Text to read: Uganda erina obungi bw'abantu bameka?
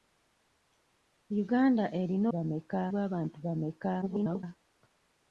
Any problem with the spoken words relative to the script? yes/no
yes